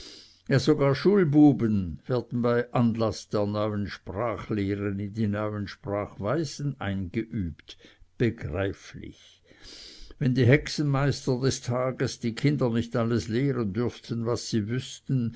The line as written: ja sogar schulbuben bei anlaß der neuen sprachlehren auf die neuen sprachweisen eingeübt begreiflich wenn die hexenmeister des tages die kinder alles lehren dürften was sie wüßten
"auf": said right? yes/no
no